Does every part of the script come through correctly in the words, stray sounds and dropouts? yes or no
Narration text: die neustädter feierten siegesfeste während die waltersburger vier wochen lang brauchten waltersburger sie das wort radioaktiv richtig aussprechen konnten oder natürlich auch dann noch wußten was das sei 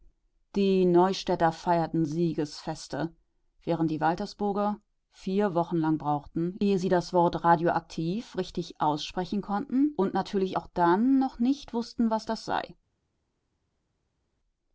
no